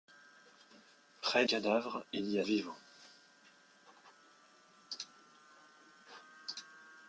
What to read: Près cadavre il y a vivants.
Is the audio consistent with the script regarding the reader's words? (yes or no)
yes